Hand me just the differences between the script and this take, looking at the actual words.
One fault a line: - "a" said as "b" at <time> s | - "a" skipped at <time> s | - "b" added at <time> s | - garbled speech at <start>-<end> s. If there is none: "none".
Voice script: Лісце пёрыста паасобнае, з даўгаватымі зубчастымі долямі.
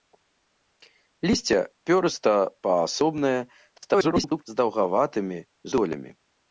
- garbled speech at 3.8-4.4 s
- "зубчастымі" skipped at 5.4 s